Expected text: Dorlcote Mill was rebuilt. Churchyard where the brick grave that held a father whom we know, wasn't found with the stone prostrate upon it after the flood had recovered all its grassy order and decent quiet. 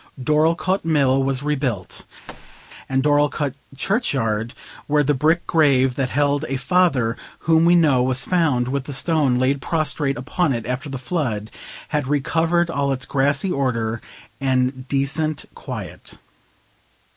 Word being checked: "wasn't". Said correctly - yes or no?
no